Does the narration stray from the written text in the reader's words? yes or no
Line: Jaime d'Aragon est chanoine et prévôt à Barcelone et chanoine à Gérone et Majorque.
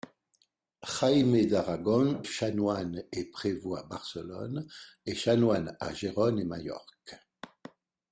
yes